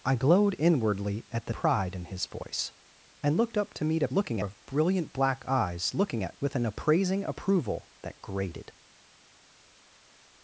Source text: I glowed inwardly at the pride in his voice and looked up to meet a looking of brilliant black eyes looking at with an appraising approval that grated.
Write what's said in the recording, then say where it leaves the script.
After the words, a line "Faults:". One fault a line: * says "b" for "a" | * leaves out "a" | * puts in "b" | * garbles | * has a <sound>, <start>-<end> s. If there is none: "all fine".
I glowed inwardly at the pride in his voice and looked up to meet a looking of brilliant black eyes looking at with an appraising approval that grated.
Faults:
all fine